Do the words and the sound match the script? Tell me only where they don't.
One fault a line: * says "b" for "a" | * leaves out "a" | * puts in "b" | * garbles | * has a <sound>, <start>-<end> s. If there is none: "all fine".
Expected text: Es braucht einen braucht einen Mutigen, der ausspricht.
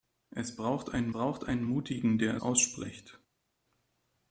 all fine